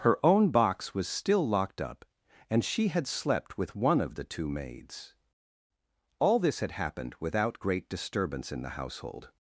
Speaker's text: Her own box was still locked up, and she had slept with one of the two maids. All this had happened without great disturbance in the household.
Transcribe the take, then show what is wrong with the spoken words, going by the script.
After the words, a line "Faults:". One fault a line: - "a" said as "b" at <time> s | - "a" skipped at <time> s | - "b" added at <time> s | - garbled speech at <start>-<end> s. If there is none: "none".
Her own box was still locked up, and she had slept with one of the two maids. All this had happened without great disturbance in the household.
Faults:
none